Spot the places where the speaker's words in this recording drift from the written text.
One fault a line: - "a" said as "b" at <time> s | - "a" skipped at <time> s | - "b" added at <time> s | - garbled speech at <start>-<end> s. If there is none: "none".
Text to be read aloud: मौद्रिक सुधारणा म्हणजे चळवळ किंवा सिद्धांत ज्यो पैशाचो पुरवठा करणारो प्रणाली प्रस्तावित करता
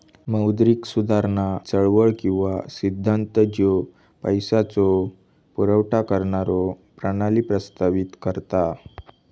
- "म्हणजे" skipped at 1.4 s